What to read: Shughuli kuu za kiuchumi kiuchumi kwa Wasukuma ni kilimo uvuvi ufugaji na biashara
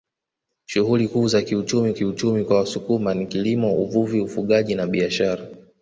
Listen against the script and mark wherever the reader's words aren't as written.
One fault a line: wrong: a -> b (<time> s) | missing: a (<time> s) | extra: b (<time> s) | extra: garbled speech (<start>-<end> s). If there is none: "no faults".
no faults